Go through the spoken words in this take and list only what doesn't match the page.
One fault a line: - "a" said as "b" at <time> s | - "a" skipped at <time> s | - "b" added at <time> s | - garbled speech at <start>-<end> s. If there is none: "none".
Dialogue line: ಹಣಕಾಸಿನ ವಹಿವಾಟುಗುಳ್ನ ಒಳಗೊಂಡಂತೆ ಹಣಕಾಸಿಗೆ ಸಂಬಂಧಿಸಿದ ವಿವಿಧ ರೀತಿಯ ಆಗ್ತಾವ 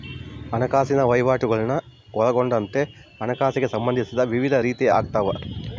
none